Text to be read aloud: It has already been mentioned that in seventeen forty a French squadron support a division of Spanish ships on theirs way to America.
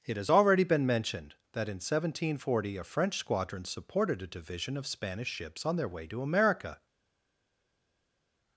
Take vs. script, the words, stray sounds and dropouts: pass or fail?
fail